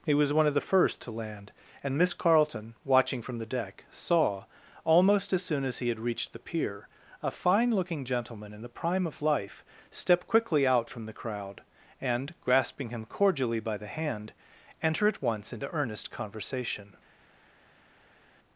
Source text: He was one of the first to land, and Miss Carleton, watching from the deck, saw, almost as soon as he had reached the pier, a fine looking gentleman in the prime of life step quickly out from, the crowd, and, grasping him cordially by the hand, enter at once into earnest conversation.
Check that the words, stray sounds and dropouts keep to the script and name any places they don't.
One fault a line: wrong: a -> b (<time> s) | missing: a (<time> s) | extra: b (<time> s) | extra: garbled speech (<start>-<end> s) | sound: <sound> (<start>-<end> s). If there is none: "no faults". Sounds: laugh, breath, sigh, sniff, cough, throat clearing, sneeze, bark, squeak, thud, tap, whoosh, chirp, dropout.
no faults